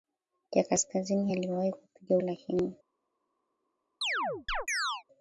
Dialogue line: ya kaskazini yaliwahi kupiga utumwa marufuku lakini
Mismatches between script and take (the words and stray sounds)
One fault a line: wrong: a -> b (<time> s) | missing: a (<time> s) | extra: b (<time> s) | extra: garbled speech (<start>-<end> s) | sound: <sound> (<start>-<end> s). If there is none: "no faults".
missing: utumwa marufuku (2.2 s)
sound: chirp (4.0-5.0 s)